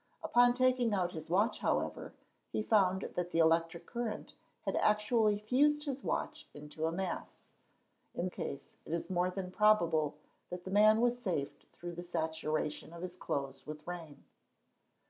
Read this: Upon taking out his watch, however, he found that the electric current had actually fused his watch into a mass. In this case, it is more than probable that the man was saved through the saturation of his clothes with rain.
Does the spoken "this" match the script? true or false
false